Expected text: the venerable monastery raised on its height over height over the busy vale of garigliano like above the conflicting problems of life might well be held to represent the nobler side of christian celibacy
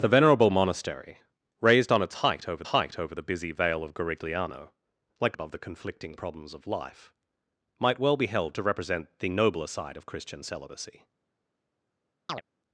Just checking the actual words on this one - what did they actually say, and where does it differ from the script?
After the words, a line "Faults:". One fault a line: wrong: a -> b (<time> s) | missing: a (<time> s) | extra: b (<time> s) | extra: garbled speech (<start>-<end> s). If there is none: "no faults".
the venerable monastery raised on its height over height over the busy vale of garigliano like above the conflicting problems of life might well be held to represent the nobler side of christian celibacy
Faults:
no faults